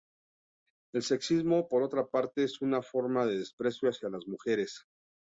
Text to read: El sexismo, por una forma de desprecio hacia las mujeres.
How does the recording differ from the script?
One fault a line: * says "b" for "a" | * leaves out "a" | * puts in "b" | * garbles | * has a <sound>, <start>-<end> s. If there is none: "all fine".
* puts in "otra parte es"